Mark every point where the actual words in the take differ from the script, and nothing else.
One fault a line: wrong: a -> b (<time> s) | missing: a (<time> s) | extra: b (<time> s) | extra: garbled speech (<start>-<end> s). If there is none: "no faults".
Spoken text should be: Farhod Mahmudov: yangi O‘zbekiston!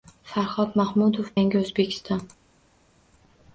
no faults